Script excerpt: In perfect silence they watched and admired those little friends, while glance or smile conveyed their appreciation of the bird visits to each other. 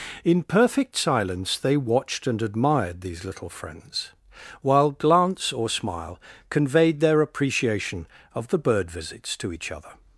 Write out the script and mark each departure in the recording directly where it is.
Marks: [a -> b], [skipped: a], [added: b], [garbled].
In perfect silence they watched and admired [those -> these] little friends, while glance or smile conveyed their appreciation of the bird visits to each other.